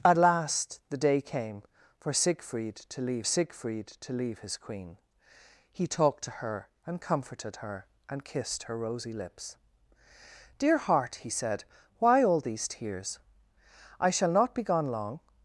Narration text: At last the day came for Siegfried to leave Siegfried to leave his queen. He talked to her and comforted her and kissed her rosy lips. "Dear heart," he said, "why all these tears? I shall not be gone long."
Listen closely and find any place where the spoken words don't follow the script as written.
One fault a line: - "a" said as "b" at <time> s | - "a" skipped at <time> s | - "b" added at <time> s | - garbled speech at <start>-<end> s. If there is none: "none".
none